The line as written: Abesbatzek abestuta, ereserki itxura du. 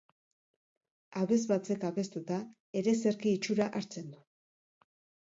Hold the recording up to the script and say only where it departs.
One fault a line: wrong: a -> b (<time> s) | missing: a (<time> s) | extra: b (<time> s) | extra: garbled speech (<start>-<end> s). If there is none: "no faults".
extra: hartzen (3.8 s)